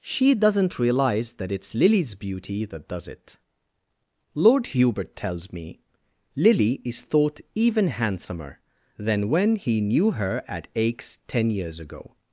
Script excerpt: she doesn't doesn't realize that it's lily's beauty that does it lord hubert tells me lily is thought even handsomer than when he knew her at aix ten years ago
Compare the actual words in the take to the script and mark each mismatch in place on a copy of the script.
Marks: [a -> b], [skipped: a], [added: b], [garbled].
she doesn't [skipped: doesn't] realize that it's lily's beauty that does it lord hubert tells me lily is thought even handsomer than when he knew her at aix ten years ago